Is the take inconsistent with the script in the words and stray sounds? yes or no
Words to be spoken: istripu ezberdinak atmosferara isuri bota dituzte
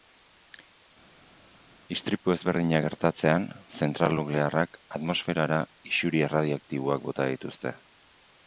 yes